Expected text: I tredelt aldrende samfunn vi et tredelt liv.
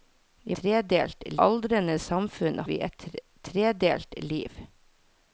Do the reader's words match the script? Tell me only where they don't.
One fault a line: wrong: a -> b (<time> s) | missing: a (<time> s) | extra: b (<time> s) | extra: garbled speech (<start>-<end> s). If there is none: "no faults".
no faults